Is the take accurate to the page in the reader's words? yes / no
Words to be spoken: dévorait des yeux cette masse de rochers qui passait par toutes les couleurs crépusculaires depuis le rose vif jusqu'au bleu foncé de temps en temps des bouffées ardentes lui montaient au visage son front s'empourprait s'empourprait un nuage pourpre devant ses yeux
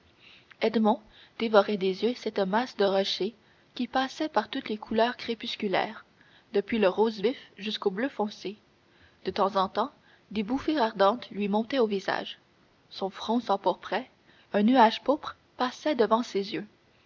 no